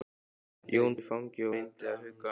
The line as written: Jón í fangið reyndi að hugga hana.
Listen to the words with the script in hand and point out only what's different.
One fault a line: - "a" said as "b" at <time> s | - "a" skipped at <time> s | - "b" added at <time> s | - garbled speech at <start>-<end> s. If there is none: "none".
none